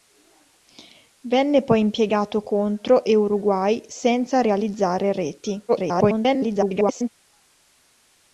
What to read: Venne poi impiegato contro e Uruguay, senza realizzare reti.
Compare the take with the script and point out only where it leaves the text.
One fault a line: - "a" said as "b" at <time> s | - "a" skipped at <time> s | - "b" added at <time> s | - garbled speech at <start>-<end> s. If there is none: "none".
- garbled speech at 5.7-7.1 s